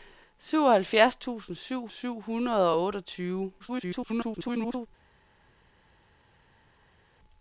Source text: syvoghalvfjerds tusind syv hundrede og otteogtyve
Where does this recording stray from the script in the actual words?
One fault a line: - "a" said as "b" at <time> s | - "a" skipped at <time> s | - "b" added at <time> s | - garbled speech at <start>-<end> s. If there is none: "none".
- "syv" added at 1.9 s
- garbled speech at 3.6-4.9 s